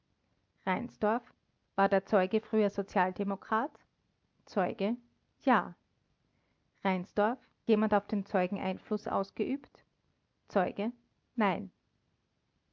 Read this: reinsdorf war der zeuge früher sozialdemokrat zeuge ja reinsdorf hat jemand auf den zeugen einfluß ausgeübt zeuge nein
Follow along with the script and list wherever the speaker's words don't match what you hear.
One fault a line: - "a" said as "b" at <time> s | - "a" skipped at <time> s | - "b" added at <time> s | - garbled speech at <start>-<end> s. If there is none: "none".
- "hat" skipped at 7.4 s